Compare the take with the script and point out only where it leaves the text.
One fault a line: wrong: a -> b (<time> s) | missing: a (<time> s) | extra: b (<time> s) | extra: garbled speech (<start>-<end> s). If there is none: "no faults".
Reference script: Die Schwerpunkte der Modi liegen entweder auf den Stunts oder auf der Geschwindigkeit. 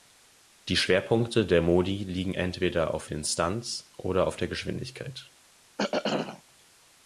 no faults